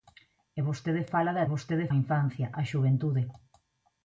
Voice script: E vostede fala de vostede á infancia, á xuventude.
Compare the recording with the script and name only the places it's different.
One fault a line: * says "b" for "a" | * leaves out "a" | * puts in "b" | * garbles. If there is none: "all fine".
all fine